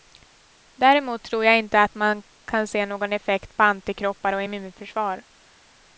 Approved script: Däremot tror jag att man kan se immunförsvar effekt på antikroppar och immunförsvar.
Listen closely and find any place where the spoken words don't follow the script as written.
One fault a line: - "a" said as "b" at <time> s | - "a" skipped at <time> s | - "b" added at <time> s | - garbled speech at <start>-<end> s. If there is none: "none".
- "inte" added at 1.6 s
- "immunförsvar" said as "någon" at 2.9 s